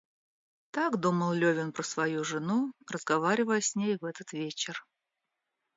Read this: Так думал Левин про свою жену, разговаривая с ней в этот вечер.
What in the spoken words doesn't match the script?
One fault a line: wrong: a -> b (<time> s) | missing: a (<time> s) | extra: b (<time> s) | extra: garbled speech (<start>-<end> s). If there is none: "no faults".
no faults